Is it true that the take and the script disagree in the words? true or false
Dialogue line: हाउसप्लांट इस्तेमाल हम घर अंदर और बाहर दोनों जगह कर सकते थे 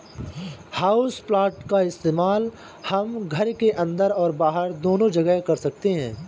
true